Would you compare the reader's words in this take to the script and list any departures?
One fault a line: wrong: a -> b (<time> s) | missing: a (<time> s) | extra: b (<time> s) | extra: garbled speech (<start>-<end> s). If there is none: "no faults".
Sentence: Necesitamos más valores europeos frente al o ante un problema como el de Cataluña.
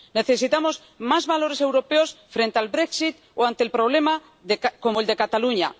extra: brexit (2.7 s)